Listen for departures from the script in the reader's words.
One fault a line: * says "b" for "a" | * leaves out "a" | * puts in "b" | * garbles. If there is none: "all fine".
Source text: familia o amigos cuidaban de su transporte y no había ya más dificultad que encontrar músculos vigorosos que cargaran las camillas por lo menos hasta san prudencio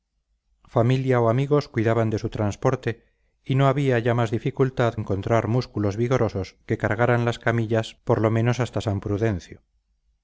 * leaves out "que"